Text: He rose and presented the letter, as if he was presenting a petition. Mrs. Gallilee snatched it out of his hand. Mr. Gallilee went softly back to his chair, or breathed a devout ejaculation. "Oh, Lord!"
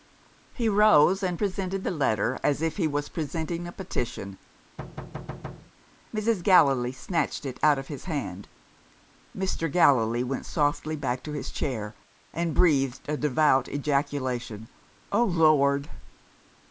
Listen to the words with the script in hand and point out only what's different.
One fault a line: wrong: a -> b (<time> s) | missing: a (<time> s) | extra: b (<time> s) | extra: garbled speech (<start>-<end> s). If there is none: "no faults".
wrong: or -> and (12.3 s)